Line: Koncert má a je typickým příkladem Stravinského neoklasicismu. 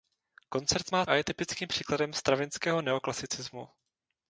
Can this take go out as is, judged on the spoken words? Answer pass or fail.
pass